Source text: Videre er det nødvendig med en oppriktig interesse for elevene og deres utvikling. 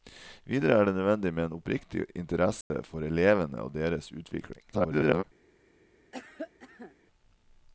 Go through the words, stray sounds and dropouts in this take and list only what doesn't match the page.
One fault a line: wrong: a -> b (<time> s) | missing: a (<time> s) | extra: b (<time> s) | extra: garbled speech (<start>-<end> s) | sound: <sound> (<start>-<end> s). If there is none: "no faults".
sound: dropout (2.6-2.7 s)
extra: garbled speech (4.7-5.2 s)
sound: cough (6.1-6.9 s)